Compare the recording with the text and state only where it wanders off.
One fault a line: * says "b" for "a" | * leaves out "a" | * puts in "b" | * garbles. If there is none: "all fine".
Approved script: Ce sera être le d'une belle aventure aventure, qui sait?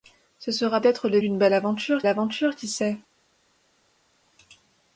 all fine